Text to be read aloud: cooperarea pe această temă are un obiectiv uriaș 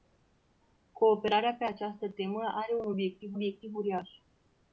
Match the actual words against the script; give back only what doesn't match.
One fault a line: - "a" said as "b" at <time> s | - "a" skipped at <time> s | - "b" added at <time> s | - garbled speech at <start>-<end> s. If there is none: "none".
- "obiectiv" added at 3.3 s